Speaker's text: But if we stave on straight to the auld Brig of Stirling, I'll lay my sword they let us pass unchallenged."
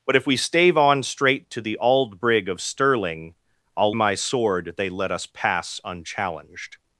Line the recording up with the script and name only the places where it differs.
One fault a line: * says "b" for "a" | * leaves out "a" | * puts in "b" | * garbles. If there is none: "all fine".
* leaves out "lay"